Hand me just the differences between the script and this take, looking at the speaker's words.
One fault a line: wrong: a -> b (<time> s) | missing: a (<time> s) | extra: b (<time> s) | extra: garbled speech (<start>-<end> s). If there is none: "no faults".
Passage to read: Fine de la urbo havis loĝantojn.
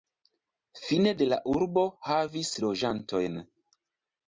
no faults